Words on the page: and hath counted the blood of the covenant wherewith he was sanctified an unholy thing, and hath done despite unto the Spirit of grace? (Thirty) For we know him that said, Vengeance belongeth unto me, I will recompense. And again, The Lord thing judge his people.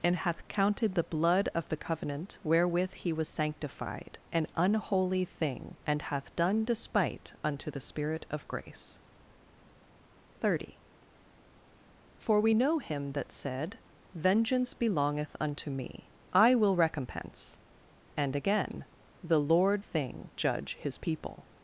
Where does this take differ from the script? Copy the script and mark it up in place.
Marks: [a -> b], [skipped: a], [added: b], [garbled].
and hath counted the blood of the covenant wherewith he was sanctified an unholy thing, and hath done despite unto the Spirit of grace? (Thirty) For we know him that said, Vengeance belongeth unto me, I will recompense. And again, The Lord thing judge his people.